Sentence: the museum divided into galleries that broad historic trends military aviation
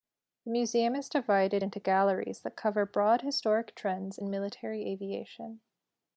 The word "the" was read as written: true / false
true